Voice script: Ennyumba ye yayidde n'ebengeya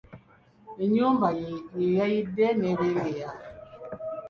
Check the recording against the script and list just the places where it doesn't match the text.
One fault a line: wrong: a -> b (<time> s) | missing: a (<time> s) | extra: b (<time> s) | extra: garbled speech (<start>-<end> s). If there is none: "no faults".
no faults